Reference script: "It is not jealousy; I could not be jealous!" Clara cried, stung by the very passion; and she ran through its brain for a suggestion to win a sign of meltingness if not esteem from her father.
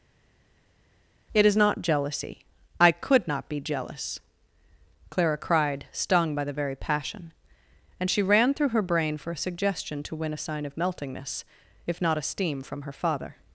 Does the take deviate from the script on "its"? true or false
true